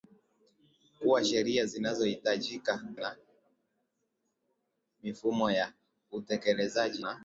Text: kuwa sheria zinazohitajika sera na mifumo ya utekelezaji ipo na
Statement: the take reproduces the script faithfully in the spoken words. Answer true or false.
false